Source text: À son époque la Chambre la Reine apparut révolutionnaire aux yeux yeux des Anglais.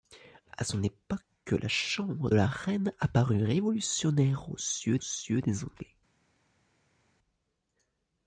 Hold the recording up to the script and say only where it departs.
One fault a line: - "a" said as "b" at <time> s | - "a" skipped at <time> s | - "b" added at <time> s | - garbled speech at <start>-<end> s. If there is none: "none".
none